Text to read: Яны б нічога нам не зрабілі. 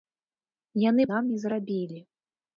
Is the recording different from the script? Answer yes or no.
yes